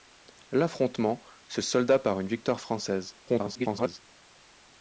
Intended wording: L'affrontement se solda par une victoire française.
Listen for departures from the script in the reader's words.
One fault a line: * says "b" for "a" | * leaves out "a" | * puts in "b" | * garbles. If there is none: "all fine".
* garbles